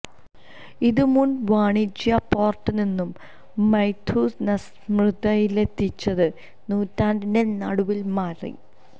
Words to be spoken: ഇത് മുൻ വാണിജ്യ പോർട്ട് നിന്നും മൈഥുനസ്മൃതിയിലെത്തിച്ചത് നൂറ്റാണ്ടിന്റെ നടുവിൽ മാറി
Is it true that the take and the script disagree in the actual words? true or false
false